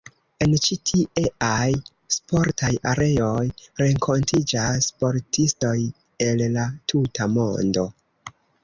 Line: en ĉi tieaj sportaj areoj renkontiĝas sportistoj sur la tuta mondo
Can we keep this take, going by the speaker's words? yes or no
no